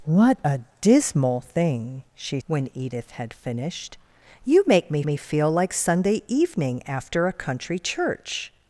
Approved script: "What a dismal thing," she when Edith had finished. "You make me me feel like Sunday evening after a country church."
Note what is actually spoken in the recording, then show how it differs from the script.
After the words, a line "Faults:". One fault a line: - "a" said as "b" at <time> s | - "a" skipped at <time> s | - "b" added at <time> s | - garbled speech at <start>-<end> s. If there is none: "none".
"What a dismal thing," she when Edith had finished. "You make me me feel like Sunday evening after a country church."
Faults:
none